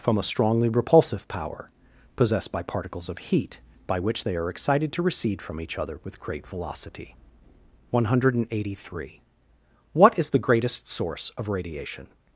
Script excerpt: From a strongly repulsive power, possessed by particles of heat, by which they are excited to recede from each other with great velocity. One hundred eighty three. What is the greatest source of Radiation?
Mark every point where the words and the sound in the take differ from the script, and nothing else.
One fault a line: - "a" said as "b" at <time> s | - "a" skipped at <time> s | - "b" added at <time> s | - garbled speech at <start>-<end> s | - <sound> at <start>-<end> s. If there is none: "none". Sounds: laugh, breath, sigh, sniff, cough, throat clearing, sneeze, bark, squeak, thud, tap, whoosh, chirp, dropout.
none